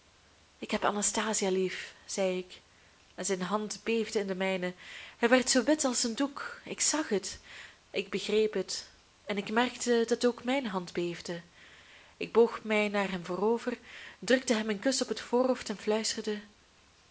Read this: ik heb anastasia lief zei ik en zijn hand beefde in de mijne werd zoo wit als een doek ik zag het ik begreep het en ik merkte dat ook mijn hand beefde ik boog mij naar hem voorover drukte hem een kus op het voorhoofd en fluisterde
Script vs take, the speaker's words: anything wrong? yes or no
yes